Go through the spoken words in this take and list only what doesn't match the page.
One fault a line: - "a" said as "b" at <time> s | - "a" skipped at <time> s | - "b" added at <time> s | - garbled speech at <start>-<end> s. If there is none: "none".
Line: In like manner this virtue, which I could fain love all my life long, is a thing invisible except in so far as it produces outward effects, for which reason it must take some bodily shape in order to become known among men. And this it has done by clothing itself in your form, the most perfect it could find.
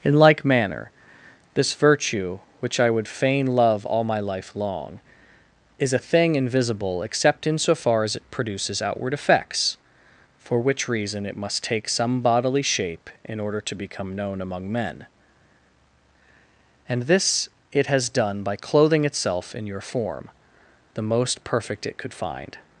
- "could" said as "would" at 2.9 s